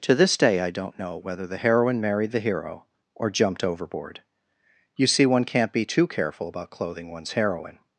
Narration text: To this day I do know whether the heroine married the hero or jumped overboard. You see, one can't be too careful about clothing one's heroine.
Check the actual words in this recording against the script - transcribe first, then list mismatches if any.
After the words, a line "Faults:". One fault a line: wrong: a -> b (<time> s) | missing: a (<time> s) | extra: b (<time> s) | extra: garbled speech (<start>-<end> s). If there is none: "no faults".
To this day I don't know whether the heroine married the hero or jumped overboard. You see, one can't be too careful about clothing one's heroine.
Faults:
wrong: do -> don't (0.7 s)